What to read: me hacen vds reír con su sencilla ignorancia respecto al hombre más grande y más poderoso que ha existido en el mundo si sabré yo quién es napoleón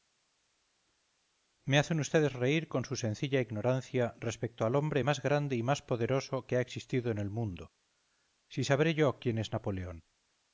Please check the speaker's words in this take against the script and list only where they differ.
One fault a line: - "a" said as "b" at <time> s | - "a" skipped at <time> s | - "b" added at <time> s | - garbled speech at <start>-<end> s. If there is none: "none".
none